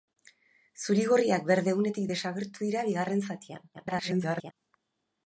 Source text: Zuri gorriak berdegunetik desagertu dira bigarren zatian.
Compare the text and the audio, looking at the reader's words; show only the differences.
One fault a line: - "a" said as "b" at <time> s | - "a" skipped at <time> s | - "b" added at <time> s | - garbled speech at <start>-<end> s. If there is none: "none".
- garbled speech at 3.7-4.5 s